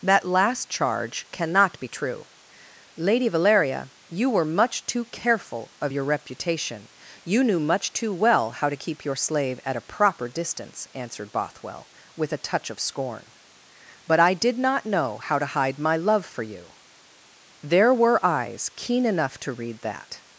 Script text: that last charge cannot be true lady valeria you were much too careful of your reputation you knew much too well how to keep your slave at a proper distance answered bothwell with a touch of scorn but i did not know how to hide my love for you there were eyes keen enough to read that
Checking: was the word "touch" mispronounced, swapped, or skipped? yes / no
no